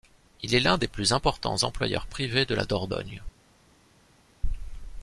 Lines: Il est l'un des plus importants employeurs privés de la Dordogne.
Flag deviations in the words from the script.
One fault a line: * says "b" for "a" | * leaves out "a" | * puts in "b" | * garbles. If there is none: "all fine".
all fine